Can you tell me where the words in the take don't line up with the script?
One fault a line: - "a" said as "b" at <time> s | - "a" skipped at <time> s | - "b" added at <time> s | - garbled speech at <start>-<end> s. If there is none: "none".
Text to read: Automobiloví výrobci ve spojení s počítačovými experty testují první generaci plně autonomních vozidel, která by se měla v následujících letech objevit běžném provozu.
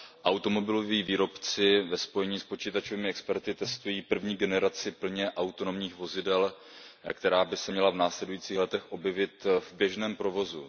- "v" added at 9.6 s